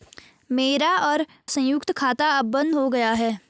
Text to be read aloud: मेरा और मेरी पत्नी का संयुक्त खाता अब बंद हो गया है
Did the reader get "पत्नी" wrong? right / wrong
wrong